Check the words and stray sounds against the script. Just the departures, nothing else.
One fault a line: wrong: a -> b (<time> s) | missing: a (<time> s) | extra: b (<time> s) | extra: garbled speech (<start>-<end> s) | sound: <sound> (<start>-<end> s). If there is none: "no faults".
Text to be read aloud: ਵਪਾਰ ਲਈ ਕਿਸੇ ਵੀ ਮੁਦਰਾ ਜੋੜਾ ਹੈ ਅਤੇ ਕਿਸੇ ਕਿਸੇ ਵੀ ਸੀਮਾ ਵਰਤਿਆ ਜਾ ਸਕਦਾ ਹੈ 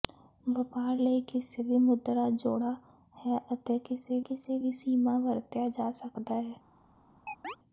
sound: chirp (7.3-7.6 s)